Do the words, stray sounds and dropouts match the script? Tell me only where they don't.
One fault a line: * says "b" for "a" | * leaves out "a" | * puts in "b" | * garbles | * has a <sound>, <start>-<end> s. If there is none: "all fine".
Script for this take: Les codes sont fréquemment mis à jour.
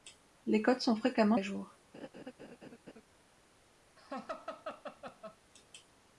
* leaves out "mis"
* has a laugh, 1.9-3.0 s
* has a laugh, 4.0-5.4 s